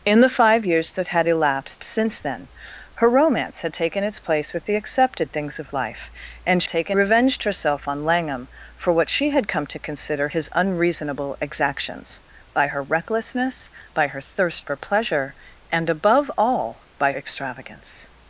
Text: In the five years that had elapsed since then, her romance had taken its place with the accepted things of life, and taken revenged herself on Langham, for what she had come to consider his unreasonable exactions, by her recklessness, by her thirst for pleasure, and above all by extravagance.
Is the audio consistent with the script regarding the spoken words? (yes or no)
yes